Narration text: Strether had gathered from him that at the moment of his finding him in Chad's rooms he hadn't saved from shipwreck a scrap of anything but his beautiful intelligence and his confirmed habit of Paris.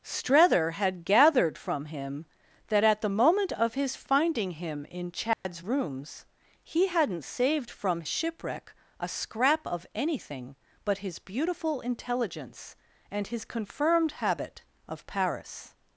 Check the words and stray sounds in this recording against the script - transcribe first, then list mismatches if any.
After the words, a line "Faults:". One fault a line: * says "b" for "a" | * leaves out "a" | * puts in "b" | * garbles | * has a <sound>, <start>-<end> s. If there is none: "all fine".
Strether had gathered from him that at the moment of his finding him in Chad's rooms he hadn't saved from shipwreck a scrap of anything but his beautiful intelligence and his confirmed habit of Paris.
Faults:
* has a dropout, 5.3-5.4 s